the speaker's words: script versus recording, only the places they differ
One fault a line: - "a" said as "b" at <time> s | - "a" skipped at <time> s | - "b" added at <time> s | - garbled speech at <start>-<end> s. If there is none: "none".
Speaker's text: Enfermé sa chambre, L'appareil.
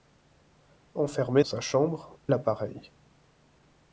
none